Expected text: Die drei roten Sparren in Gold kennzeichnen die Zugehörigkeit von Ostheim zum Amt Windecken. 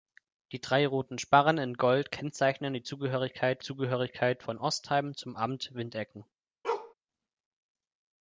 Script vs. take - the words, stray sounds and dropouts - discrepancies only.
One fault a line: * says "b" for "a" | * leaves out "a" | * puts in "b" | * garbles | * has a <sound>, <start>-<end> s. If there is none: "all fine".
* puts in "Zugehörigkeit"
* has a bark, 6.6-6.9 s